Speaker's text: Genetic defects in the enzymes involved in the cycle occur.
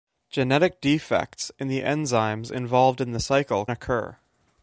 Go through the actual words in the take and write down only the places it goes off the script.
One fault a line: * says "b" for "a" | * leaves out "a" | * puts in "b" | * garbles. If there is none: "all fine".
all fine